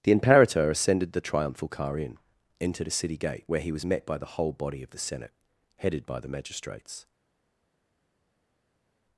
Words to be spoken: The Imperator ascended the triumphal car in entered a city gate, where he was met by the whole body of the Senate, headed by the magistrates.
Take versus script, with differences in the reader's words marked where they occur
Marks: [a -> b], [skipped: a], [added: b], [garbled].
The Imperator ascended the triumphal car in entered a city gate, where he was met by the whole body of the Senate, headed by the magistrates.